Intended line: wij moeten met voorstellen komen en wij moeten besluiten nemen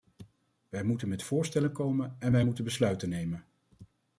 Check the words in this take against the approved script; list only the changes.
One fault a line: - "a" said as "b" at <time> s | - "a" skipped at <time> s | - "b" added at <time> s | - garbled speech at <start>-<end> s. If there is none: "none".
none